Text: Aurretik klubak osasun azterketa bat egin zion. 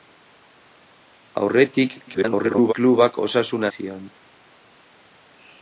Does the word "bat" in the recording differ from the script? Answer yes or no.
yes